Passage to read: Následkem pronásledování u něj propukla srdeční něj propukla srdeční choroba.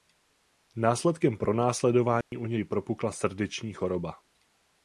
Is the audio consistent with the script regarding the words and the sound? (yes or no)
no